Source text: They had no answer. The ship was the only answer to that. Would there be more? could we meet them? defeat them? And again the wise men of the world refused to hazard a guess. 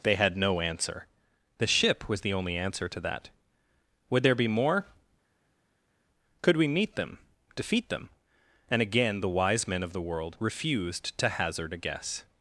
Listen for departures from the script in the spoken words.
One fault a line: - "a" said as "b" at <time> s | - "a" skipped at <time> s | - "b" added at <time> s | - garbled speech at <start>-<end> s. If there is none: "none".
none